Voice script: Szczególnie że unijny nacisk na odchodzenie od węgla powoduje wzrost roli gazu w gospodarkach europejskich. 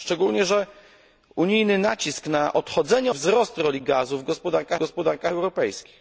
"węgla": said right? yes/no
no